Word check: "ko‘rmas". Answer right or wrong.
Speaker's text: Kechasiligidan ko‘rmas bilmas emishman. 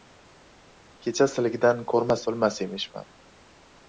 right